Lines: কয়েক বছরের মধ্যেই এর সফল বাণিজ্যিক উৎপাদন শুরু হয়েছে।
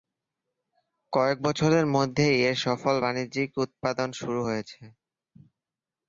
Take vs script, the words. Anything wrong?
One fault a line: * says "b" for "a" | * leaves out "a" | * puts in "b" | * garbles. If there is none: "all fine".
all fine